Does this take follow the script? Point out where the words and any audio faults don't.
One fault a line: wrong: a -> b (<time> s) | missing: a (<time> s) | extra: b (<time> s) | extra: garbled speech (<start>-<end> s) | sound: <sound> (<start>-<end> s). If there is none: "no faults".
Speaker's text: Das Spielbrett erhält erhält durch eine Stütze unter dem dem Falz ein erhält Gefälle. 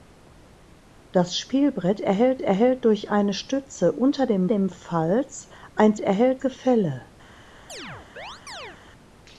sound: chirp (7.7-8.8 s)